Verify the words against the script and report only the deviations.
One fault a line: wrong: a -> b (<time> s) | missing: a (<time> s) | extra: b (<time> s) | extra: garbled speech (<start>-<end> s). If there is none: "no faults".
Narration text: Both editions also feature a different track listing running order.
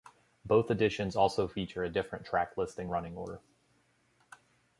no faults